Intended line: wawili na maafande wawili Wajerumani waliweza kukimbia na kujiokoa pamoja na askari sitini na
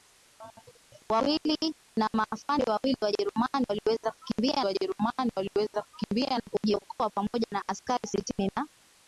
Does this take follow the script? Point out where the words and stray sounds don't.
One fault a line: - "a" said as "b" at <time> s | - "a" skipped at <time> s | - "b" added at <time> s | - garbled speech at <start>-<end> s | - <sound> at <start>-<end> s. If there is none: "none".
- "Wajerumani waliweza kukimbia" added at 4.6 s